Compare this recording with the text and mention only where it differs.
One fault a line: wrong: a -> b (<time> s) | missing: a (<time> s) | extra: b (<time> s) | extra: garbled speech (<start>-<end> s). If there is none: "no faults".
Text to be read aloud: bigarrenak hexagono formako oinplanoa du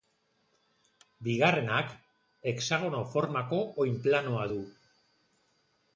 no faults